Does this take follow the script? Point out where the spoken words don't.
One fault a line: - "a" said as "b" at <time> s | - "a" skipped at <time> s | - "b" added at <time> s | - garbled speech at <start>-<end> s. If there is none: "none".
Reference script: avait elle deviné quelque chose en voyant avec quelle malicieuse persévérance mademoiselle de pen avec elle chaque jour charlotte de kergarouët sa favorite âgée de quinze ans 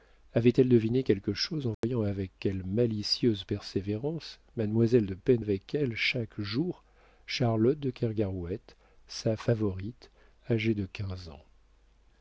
none